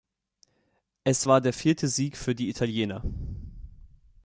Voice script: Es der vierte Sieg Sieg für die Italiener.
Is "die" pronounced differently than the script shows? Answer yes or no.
no